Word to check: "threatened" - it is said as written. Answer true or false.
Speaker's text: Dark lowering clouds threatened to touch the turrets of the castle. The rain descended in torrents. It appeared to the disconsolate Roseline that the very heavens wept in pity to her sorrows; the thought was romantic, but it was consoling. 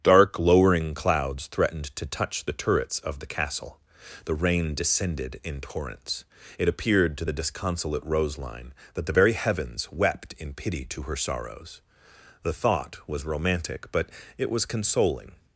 true